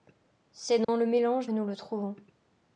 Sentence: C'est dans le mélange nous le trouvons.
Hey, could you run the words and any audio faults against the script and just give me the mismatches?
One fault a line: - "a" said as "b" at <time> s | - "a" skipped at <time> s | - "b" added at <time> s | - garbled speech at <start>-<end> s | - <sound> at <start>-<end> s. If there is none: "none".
- dropout at 0.8-0.9 s